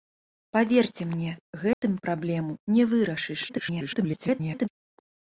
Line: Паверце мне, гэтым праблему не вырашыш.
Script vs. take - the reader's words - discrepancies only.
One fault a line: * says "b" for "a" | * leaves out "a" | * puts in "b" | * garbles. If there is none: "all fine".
* garbles